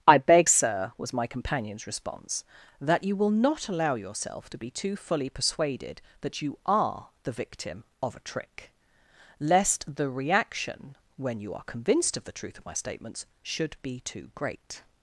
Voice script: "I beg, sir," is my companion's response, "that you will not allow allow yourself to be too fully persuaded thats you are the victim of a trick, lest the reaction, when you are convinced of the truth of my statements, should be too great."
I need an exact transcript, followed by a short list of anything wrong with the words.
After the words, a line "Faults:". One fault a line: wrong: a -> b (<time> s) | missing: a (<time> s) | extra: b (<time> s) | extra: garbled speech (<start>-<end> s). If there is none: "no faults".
"I beg, sir," was my companion's response, "that you will not allow yourself to be too fully persuaded that you are the victim of a trick, lest the reaction, when you are convinced of the truth of my statements, should be too great."
Faults:
wrong: is -> was (1.0 s)
missing: allow (3.9 s)
wrong: thats -> that (6.2 s)